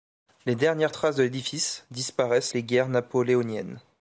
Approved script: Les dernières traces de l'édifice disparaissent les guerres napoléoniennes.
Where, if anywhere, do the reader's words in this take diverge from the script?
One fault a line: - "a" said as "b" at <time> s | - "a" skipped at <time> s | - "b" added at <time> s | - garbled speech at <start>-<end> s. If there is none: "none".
none